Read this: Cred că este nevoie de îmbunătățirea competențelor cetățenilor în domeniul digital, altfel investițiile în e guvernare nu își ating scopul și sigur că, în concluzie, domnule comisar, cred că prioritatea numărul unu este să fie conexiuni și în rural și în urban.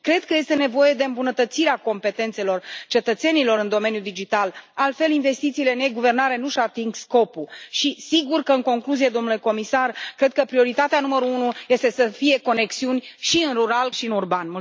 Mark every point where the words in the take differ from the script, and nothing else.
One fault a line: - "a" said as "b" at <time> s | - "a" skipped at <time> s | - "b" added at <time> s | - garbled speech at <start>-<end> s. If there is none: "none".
none